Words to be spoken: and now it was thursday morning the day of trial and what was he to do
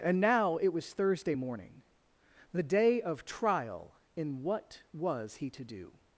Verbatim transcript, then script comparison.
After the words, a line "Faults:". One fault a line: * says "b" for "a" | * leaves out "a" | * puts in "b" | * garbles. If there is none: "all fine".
and now it was thursday morning the day of trial in what was he to do
Faults:
* says "in" for "and"